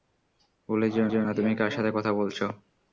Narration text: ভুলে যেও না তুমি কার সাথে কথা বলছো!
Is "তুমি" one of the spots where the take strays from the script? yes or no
no